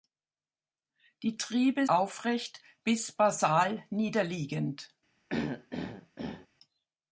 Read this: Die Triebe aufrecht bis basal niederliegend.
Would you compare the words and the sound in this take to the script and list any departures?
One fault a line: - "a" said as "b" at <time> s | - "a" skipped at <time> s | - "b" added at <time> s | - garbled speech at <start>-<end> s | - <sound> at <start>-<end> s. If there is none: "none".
- throat clearing at 5.3-6.5 s